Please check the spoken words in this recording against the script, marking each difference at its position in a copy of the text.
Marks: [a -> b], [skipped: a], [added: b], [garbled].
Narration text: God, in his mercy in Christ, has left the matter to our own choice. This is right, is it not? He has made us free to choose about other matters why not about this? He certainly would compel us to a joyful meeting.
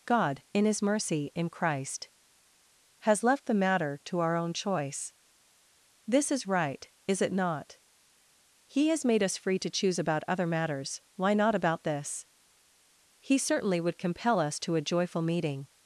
God, in his mercy in Christ, has left the matter to our own choice. This is right, is it not? He has made us free to choose about other matters why not about this? He certainly would compel us to a joyful meeting.